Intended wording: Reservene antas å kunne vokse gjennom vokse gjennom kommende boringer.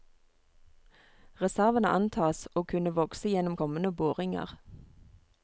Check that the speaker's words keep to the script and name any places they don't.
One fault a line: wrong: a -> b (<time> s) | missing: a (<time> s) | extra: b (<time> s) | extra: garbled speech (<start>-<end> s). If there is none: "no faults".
missing: vokse gjennom (3.6 s)